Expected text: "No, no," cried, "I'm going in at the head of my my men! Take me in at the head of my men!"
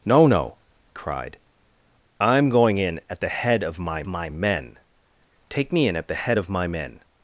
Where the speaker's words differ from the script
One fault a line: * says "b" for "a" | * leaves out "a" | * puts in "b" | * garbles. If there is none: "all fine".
all fine